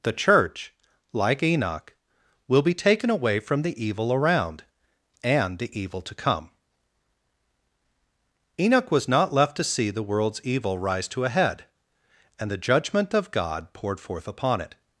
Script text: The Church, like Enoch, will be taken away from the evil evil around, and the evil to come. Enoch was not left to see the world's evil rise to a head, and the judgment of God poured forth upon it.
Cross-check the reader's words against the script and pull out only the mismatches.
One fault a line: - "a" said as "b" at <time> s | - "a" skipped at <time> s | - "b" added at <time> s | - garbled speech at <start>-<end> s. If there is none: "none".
- "evil" skipped at 4.1 s